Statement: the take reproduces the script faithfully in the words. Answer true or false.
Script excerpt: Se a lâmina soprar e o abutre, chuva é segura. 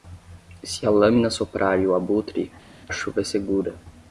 true